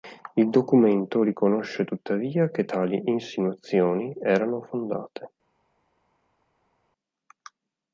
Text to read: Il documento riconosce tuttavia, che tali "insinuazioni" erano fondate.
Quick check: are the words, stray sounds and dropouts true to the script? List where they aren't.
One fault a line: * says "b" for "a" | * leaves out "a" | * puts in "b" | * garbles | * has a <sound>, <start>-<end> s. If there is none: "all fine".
all fine